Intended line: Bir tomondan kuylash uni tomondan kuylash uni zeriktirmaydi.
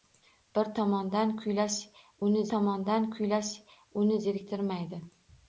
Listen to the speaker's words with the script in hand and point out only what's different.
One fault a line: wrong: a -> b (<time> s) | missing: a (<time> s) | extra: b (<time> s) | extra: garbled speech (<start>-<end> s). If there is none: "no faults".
no faults